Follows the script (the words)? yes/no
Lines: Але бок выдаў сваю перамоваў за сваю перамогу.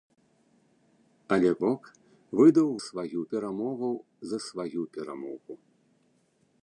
yes